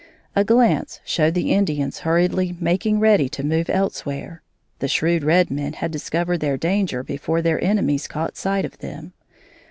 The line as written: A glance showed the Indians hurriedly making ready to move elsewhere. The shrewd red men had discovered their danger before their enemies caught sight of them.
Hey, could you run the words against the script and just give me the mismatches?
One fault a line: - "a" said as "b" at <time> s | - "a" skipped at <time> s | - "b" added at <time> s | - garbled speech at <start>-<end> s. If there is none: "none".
none